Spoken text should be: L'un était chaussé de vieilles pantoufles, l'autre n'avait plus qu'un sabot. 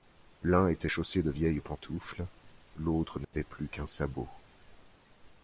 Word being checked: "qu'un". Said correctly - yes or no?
yes